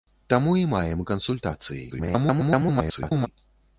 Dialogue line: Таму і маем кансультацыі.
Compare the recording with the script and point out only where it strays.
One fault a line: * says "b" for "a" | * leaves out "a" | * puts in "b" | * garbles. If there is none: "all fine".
* garbles